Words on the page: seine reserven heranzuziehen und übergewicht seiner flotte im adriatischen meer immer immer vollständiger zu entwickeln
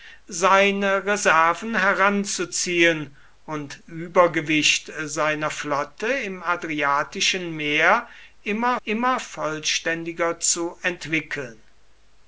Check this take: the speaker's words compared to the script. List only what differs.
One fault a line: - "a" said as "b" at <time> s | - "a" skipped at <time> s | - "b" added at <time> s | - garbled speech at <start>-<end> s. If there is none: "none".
none